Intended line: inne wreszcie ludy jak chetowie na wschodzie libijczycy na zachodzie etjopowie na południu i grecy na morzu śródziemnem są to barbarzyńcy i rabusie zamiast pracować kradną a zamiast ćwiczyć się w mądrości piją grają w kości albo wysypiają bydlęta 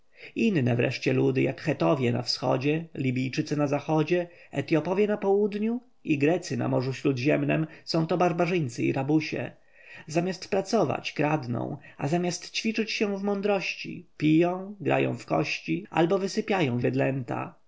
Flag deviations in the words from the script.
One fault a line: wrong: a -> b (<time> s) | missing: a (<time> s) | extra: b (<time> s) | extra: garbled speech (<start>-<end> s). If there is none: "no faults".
no faults